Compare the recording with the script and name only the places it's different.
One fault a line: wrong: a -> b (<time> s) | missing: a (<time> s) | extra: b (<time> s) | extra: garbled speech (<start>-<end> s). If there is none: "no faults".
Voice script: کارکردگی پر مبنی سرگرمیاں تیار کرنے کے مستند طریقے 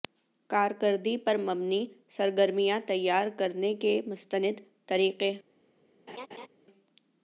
no faults